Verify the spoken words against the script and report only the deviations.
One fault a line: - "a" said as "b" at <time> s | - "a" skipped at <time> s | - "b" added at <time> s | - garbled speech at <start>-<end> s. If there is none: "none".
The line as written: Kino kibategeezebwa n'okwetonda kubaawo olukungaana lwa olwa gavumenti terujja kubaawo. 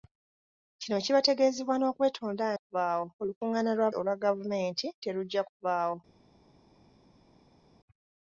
none